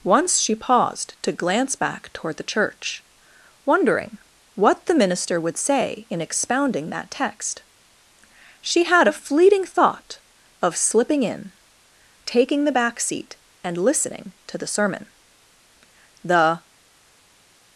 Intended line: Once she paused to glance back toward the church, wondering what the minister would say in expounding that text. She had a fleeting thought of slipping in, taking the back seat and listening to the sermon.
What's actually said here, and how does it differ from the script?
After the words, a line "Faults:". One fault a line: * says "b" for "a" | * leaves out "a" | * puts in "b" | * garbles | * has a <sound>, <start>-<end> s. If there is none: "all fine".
Once she paused to glance back toward the church, wondering what the minister would say in expounding that text. She had a fleeting thought of slipping in, taking the back seat and listening to the sermon. The
Faults:
* puts in "The"